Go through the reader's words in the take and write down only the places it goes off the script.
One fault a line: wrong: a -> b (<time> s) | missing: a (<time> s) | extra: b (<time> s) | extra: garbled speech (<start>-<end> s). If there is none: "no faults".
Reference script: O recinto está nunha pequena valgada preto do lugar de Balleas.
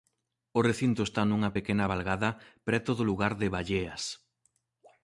no faults